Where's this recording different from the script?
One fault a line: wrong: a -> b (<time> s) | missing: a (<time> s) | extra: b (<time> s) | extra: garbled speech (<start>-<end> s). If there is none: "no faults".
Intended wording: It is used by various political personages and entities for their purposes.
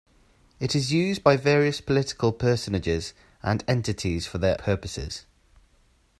no faults